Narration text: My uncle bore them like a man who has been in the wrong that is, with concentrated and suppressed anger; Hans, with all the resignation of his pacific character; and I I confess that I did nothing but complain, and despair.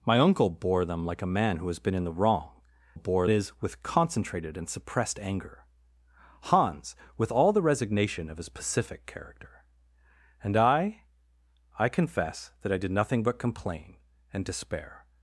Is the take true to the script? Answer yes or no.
no